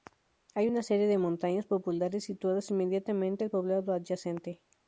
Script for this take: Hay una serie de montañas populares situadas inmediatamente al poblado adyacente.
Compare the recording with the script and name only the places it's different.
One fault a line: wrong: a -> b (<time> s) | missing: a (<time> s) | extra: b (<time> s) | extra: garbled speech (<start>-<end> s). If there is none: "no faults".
no faults